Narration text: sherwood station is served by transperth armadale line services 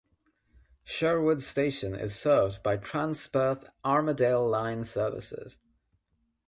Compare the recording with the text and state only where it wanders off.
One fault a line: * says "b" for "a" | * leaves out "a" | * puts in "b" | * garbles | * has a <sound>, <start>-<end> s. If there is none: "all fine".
all fine